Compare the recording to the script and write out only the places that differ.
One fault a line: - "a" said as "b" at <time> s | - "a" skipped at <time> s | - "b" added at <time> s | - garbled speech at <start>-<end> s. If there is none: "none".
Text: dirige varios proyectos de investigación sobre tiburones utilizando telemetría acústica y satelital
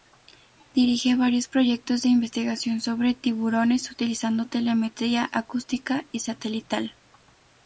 none